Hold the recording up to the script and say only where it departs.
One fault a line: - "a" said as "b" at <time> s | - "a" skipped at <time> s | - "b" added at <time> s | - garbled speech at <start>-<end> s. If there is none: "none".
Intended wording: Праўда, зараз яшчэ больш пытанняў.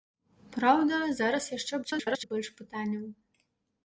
- garbled speech at 1.8-2.3 s